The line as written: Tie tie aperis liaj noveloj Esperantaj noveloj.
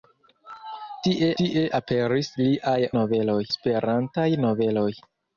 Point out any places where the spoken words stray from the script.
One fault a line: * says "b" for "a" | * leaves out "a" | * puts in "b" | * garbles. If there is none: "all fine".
all fine